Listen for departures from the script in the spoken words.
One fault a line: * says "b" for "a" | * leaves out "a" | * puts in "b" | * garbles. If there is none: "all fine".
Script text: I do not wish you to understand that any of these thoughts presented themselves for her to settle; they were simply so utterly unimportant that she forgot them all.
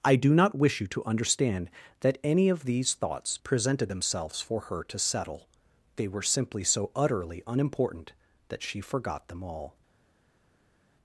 all fine